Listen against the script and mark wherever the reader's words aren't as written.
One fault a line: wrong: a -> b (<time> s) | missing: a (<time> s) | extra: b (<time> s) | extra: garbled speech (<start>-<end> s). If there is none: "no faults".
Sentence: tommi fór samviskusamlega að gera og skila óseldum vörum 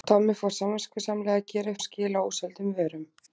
no faults